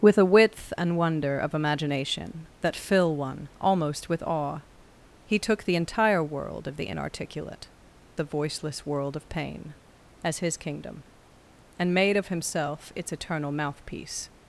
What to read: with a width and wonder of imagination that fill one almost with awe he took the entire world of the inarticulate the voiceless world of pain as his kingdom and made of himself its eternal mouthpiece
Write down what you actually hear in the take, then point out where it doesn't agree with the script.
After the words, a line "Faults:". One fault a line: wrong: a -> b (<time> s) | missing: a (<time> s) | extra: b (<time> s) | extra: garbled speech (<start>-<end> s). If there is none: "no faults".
with a width and wonder of imagination that fill one almost with awe he took the entire world of the inarticulate the voiceless world of pain as his kingdom and made of himself its eternal mouthpiece
Faults:
no faults